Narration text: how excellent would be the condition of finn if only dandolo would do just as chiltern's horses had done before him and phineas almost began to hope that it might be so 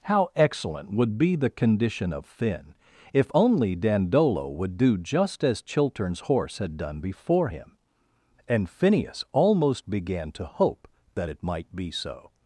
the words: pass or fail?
fail